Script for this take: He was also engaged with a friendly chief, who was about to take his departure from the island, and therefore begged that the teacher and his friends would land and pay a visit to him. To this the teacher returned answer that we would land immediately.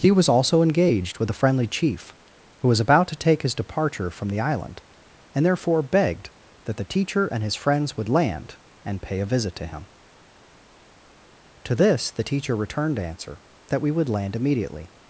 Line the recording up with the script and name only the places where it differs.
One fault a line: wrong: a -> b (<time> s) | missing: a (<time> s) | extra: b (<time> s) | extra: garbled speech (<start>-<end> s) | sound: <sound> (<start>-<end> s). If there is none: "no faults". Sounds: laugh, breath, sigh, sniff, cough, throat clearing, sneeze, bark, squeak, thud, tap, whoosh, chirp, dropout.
no faults